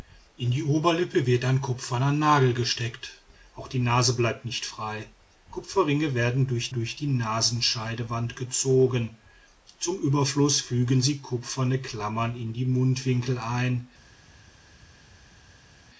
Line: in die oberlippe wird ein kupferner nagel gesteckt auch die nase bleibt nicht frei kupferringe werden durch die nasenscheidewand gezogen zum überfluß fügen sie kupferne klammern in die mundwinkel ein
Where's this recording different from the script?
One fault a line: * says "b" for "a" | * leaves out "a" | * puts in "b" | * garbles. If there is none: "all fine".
* puts in "durch"